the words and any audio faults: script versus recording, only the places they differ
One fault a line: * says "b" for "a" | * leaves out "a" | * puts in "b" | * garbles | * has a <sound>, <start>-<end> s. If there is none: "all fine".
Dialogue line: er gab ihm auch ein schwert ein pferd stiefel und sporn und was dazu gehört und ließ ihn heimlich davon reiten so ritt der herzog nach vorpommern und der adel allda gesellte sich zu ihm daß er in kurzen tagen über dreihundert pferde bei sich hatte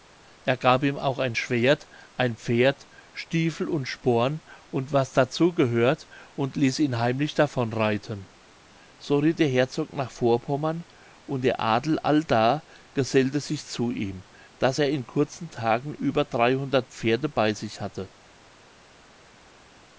all fine